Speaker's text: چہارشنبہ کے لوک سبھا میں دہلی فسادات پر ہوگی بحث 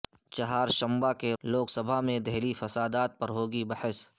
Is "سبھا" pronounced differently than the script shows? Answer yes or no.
no